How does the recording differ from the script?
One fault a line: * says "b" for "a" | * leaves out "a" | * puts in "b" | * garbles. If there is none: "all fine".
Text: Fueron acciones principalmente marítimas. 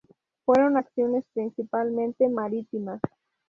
all fine